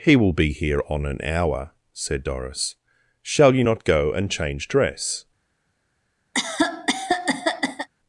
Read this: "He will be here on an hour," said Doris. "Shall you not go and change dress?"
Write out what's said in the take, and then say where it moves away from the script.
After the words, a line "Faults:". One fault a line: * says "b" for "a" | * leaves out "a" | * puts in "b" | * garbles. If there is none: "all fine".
"He will be here on an hour," said Doris. "Shall you not go and change dress?"
Faults:
all fine